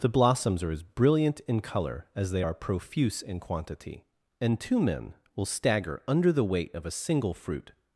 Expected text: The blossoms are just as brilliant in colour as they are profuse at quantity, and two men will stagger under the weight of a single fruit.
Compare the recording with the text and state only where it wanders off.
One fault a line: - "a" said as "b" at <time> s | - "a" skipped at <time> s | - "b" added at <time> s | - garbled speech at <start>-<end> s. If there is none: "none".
- "just" skipped at 0.7 s
- "at" said as "in" at 3.2 s